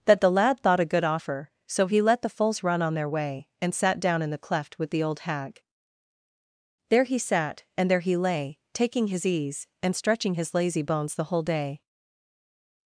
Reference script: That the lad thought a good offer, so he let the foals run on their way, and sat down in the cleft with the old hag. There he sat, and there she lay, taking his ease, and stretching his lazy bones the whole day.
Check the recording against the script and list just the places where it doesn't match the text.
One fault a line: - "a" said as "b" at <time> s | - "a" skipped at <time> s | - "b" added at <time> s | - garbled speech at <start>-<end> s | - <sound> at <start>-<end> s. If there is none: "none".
- "she" said as "he" at 8.0 s